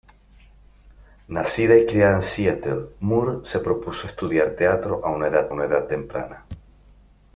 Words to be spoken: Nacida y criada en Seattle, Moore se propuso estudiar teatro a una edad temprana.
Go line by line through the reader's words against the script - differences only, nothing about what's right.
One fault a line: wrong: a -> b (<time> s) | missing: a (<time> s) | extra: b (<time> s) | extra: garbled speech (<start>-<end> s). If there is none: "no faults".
extra: una edad (5.5 s)